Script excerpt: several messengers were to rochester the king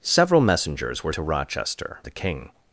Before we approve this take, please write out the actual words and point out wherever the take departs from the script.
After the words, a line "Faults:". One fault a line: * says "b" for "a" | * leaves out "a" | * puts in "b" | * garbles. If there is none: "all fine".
several messengers were to rochester the king
Faults:
all fine